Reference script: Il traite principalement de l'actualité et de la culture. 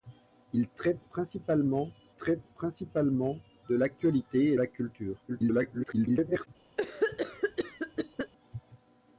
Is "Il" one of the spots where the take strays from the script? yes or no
no